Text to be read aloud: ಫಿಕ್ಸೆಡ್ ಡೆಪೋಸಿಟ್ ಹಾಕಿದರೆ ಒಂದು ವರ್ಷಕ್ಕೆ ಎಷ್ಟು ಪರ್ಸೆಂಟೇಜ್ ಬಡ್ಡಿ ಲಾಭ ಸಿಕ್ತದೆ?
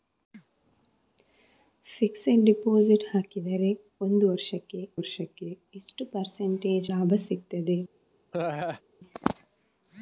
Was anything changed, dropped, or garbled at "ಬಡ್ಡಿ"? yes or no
yes